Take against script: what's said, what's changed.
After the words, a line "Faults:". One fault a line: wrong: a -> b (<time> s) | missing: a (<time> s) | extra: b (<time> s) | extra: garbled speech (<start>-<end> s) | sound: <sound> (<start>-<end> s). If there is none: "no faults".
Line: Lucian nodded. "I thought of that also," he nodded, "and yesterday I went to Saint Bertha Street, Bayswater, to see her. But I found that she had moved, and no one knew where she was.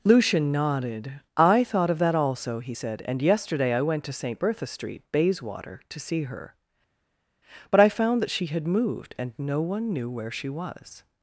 Lucian nodded. "I thought of that also," he said, "and yesterday I went to Saint Bertha Street, Bayswater, to see her. But I found that she had moved, and no one knew where she was.
Faults:
wrong: nodded -> said (2.7 s)